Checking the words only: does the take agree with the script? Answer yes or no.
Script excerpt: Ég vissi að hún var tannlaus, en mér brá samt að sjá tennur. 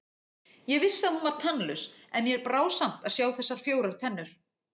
no